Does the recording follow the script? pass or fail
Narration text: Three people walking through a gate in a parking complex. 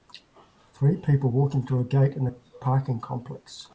pass